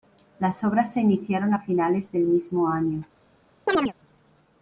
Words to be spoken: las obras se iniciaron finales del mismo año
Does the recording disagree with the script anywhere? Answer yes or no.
yes